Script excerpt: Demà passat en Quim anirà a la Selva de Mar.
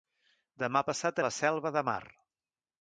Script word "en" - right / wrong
wrong